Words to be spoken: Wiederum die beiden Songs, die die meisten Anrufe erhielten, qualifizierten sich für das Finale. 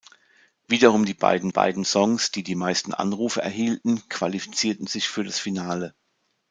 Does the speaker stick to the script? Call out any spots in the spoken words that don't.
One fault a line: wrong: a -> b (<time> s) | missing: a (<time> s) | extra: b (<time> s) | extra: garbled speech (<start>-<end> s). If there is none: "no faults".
extra: beiden (1.5 s)